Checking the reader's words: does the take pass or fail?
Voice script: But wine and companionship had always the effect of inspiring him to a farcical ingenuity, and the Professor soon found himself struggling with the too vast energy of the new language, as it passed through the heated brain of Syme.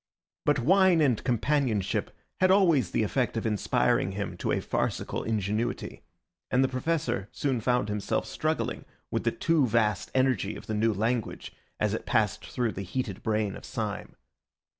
pass